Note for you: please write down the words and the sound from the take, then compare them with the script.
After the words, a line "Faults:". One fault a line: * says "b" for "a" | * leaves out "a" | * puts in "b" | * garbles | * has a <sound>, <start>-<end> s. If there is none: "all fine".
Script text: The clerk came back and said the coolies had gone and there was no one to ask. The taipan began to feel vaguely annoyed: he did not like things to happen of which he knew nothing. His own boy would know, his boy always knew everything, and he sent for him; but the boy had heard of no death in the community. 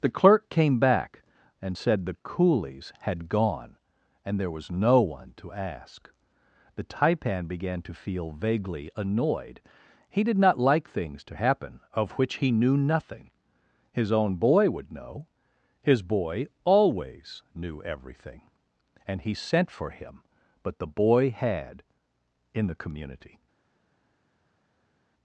The clerk came back and said the coolies had gone and there was no one to ask. The taipan began to feel vaguely annoyed: he did not like things to happen of which he knew nothing. His own boy would know, his boy always knew everything, and he sent for him; but the boy had in the community.
Faults:
* leaves out "heard of no death"